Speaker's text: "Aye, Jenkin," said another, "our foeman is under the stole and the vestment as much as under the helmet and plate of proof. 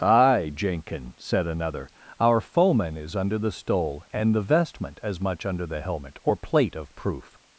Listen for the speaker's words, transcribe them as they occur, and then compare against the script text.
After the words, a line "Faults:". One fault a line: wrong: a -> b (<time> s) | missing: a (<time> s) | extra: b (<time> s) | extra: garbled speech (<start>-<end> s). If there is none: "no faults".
"Aye, Jenkin," said another, "our foeman is under the stole and the vestment as much under the helmet or plate of proof.
Faults:
missing: as (5.5 s)
wrong: and -> or (6.2 s)